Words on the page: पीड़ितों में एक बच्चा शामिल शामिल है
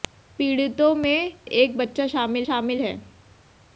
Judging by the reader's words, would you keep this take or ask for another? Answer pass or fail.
pass